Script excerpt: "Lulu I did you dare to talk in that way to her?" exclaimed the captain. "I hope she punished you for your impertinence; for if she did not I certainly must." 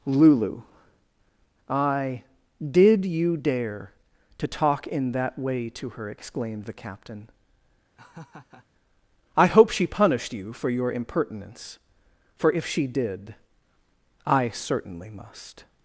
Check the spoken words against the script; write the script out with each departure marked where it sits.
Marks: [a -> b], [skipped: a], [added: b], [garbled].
"Lulu I did you dare to talk in that way to her?" exclaimed the captain. "I hope she punished you for your impertinence; for if she did [skipped: not] I certainly must."